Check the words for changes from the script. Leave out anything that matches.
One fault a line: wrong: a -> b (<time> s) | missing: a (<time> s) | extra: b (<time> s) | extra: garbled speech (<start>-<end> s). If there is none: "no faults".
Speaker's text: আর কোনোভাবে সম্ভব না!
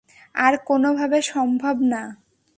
no faults